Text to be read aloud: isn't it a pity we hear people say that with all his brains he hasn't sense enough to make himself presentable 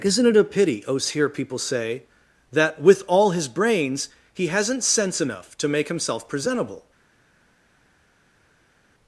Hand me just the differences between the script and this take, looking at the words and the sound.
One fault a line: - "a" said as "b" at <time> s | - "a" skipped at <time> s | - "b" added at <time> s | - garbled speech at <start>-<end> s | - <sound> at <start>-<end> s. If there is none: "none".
- "we" said as "os" at 0.8 s